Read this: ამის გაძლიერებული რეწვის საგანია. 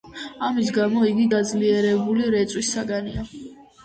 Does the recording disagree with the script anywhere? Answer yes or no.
yes